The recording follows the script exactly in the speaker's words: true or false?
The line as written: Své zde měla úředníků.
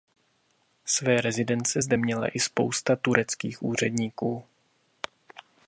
false